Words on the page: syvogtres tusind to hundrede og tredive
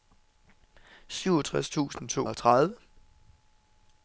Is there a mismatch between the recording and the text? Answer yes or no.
yes